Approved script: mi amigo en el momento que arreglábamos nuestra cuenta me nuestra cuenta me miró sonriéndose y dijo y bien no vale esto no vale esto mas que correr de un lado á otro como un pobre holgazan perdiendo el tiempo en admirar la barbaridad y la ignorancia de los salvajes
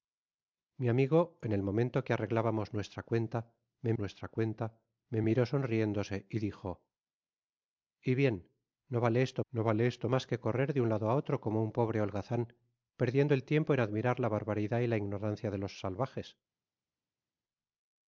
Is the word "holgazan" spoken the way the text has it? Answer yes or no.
yes